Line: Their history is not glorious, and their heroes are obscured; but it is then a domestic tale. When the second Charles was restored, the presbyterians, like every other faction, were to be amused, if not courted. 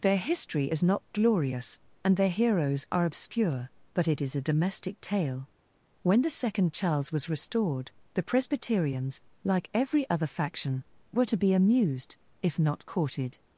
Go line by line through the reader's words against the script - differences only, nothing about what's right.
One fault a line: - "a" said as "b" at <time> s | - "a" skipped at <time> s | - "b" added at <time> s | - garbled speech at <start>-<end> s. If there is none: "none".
- "obscured" said as "obscure" at 3.0 s
- "then" skipped at 4.3 s